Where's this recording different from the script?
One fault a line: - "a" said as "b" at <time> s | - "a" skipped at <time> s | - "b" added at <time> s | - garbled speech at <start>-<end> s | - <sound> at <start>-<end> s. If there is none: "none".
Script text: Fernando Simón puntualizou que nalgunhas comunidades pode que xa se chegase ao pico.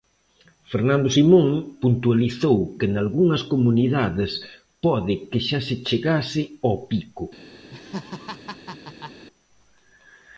- laugh at 7.7-9.3 s